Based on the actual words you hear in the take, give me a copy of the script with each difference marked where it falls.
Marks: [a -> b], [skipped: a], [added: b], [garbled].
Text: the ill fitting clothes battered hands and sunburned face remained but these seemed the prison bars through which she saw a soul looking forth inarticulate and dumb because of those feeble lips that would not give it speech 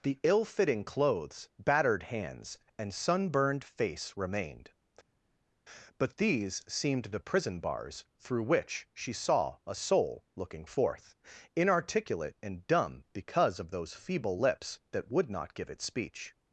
the ill fitting clothes battered hands and sunburned face remained but these seemed the prison bars through which she saw a soul looking forth inarticulate and dumb because of those feeble lips that would not give it speech